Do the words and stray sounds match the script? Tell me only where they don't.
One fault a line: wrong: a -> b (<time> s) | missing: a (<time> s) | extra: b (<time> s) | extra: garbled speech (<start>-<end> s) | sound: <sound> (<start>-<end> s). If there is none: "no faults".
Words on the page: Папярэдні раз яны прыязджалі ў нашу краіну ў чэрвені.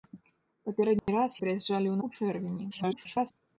sound: dropout (1.0-1.1 s)
missing: яны (1.4 s)
missing: нашу краіну (2.0 s)
extra: garbled speech (2.7-3.3 s)